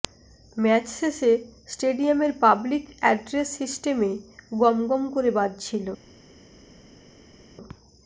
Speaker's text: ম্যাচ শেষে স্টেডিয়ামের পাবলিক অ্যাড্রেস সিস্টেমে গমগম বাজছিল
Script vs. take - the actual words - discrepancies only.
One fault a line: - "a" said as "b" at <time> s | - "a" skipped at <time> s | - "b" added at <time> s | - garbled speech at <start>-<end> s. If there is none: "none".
- "করে" added at 5.2 s